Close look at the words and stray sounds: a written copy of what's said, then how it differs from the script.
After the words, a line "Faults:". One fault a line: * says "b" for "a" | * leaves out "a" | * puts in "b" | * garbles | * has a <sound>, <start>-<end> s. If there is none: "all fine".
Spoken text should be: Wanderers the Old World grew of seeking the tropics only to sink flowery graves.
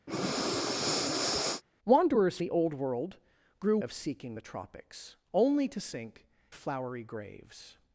Wanderers the Old World grew of seeking the tropics only to sink flowery graves.
Faults:
* has a breath, 0.1-1.6 s